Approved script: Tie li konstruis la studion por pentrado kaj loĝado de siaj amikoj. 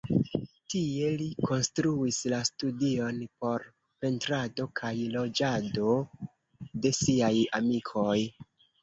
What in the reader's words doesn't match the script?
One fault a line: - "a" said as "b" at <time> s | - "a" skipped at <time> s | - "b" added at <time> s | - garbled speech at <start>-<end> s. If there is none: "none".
none